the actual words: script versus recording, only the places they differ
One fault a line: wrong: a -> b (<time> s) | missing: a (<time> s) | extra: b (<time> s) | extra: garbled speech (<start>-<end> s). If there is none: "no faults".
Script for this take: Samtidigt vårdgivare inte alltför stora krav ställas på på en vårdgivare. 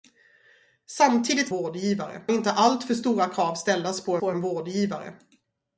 no faults